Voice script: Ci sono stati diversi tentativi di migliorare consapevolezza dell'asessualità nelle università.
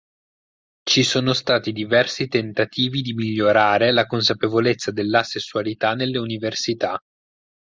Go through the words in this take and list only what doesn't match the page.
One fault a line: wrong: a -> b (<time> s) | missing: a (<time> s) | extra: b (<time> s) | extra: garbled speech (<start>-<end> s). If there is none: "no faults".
extra: la (3.9 s)